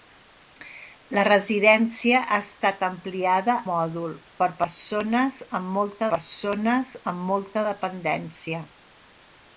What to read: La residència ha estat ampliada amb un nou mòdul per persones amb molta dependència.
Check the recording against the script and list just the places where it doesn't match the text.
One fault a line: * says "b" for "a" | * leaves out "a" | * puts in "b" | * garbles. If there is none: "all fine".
* says "mòdul per persones amb molta" for "amb un nou mòdul per"